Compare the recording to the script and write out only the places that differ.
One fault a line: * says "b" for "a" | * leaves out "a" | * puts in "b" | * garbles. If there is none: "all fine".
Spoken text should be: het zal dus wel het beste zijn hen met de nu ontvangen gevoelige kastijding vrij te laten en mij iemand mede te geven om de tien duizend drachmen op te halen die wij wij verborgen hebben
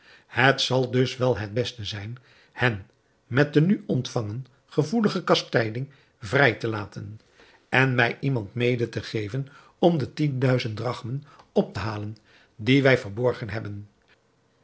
* leaves out "wij"